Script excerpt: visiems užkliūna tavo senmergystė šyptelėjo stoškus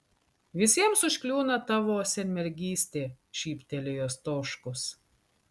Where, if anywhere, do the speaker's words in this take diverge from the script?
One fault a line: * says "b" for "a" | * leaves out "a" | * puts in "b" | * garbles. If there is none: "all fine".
all fine